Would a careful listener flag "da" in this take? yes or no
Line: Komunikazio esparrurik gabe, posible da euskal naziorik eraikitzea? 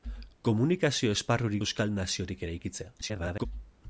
yes